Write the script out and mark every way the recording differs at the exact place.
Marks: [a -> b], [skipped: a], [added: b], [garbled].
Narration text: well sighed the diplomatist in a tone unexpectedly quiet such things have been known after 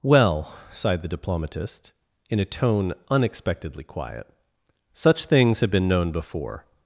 well sighed the diplomatist in a tone unexpectedly quiet such things have been known [after -> before]